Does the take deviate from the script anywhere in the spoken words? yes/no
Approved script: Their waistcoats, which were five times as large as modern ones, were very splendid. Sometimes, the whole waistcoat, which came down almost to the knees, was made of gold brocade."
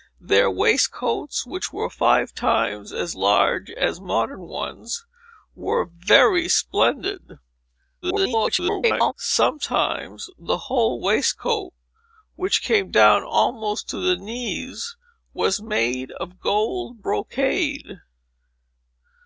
yes